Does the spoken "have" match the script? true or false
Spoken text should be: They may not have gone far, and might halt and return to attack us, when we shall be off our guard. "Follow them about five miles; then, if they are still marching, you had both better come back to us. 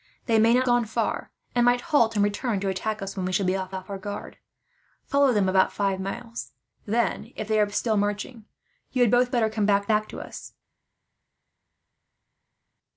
false